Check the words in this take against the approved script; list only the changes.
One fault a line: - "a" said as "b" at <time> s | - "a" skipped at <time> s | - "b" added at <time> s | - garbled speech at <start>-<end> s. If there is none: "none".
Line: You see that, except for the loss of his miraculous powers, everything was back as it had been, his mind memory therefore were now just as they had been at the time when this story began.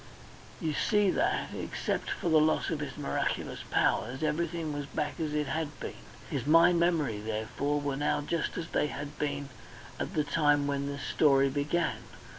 none